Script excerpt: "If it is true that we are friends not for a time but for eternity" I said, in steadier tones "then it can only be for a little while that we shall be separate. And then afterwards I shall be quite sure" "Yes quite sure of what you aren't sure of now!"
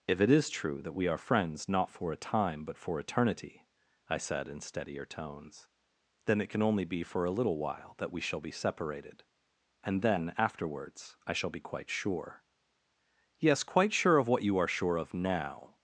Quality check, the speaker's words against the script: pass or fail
fail